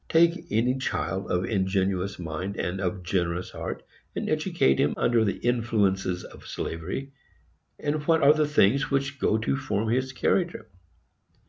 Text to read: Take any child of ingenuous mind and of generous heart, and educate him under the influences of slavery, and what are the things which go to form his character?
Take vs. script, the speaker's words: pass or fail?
pass